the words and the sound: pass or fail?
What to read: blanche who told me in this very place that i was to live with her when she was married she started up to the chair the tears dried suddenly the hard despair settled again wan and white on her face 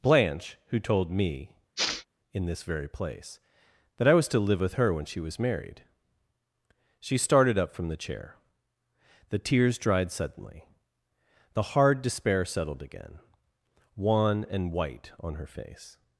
fail